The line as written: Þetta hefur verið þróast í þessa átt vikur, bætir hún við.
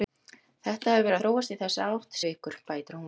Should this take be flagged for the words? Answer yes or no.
no